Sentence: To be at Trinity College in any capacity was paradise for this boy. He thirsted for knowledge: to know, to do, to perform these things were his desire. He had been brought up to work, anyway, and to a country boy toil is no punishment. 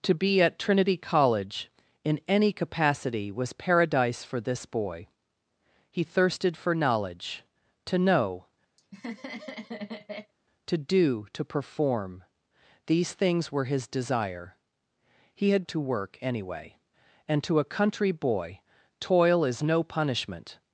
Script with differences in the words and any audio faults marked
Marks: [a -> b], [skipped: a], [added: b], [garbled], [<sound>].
To be at Trinity College in any capacity was paradise for this boy. He thirsted for knowledge: to know, [laugh] to do, to perform these things were his desire. He had [skipped: been brought up] to work, anyway, and to a country boy toil is no punishment.